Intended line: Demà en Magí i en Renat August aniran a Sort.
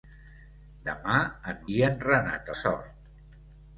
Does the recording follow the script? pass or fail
fail